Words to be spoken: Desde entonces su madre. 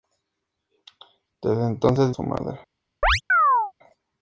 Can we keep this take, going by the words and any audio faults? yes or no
no